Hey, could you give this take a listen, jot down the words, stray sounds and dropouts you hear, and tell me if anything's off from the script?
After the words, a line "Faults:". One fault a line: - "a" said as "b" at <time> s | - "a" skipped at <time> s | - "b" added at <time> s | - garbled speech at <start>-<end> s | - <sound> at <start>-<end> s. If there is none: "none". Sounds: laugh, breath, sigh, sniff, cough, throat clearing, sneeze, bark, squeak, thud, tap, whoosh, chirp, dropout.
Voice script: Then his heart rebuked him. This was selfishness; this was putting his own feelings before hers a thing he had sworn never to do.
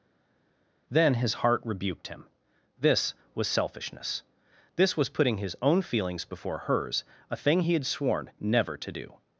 Then his heart rebuked him. This was selfishness; this was putting his own feelings before hers a thing he had sworn never to do.
Faults:
none